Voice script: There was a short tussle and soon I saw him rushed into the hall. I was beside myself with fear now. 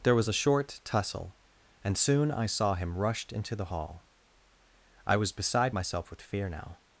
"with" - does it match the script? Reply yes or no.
yes